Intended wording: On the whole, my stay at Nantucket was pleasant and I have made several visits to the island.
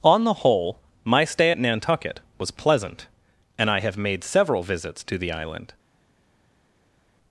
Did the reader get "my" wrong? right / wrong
right